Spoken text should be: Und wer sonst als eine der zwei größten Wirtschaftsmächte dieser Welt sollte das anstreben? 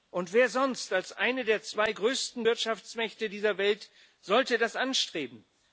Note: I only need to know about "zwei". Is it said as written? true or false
true